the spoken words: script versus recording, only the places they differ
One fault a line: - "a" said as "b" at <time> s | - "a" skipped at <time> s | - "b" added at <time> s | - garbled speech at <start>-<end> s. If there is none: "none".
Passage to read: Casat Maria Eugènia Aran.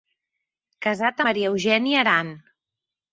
none